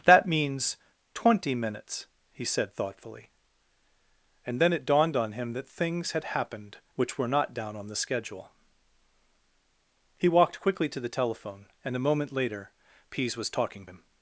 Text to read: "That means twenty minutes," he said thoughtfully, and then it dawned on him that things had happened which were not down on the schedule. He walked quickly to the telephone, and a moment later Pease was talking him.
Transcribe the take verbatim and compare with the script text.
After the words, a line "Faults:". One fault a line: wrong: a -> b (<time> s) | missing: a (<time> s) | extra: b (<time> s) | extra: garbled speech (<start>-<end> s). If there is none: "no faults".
"That means twenty minutes," he said thoughtfully, and then it dawned on him that things had happened which were not down on the schedule. He walked quickly to the telephone, and a moment later Pease was talking him.
Faults:
no faults